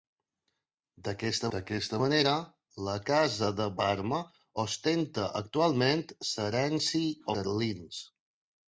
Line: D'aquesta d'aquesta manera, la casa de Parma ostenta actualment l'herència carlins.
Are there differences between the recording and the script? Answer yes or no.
no